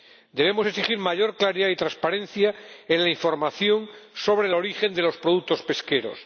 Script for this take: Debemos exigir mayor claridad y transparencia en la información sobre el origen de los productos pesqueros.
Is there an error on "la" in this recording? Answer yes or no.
no